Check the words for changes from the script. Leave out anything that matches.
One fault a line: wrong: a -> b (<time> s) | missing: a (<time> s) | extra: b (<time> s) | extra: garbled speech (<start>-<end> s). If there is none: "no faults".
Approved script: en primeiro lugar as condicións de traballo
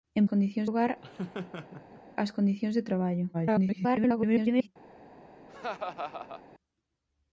wrong: primeiro -> condicións (0.3 s)
extra: garbled speech (3.3-4.7 s)